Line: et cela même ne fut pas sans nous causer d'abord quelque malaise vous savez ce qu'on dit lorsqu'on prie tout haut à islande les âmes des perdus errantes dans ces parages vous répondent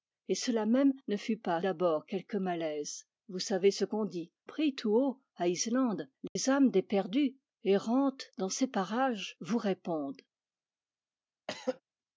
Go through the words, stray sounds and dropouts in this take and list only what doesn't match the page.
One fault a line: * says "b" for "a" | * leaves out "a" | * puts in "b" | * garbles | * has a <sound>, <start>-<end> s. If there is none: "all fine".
* leaves out "sans nous causer"
* leaves out "lorsqu'on"
* has a dropout, 6.3-6.4 s
* has a throat clearing, 11.5-11.8 s